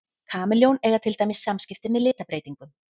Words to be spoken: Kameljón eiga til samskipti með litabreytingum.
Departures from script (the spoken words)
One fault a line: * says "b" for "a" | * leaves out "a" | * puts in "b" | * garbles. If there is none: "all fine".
* puts in "dæmis"